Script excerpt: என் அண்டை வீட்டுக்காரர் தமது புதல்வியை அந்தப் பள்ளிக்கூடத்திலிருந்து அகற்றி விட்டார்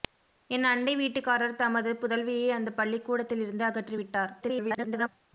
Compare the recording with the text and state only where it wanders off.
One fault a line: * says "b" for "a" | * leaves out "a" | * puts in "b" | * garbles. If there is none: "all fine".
* garbles